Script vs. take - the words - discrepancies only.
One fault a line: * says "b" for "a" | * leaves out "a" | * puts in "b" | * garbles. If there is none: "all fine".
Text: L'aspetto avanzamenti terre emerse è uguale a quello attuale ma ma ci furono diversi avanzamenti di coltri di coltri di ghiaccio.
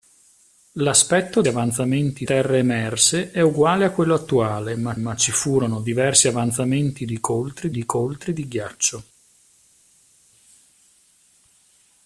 all fine